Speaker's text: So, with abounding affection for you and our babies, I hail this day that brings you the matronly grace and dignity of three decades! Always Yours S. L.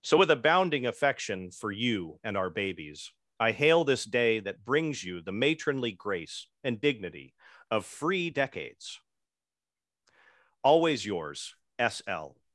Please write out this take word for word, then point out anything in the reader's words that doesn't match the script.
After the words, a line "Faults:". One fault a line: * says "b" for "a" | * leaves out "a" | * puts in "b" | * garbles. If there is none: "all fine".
So, with abounding affection for you and our babies, I hail this day that brings you the matronly grace and dignity of free decades! Always Yours S. L.
Faults:
* says "free" for "three"